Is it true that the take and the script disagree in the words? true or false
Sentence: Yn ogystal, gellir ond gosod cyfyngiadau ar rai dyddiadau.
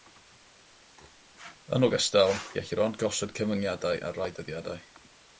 false